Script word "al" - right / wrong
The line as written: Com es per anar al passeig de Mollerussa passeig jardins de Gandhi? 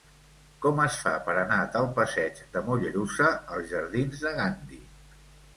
wrong